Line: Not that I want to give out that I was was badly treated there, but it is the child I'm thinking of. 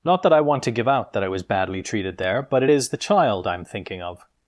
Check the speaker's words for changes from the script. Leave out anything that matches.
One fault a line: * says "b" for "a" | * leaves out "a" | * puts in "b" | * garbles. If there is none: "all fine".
* leaves out "was"